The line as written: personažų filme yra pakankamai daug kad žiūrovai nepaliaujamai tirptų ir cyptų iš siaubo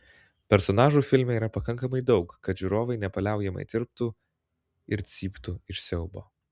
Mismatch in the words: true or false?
false